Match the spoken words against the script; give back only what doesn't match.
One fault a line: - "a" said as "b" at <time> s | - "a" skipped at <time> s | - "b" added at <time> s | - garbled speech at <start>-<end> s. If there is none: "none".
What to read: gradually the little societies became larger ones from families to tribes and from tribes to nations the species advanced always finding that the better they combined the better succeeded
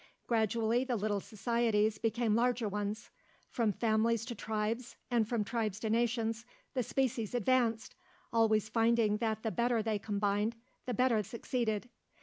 none